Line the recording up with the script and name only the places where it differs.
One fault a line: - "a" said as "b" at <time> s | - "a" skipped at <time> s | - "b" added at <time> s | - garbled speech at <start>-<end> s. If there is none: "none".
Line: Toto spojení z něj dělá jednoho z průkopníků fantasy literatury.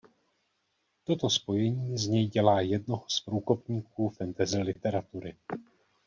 none